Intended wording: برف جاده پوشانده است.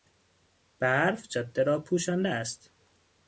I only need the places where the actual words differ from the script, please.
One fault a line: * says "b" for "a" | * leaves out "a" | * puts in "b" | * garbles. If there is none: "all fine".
* puts in "را"